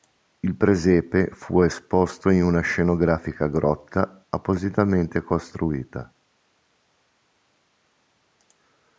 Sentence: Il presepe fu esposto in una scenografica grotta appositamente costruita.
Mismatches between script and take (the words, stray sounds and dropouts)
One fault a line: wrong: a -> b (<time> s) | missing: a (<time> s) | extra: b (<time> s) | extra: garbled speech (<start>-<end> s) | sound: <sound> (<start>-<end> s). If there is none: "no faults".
no faults